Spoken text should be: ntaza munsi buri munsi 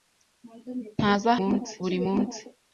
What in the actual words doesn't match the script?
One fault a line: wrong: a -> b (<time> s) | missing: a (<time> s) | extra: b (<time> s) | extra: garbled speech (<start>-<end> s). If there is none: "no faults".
no faults